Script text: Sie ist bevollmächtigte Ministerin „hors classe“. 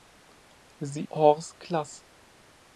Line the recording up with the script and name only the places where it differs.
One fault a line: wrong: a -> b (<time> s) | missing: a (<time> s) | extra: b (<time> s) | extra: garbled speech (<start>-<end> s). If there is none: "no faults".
missing: ist bevollmächtigte Ministerin (1.1 s)